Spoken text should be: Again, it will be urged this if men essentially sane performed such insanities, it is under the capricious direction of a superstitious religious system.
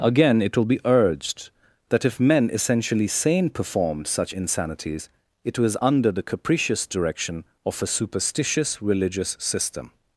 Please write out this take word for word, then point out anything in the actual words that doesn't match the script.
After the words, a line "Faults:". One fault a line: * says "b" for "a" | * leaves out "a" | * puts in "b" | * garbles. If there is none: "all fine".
Again, it will be urged that if men essentially sane performed such insanities, it was under the capricious direction of a superstitious religious system.
Faults:
* says "that" for "this"
* says "was" for "is"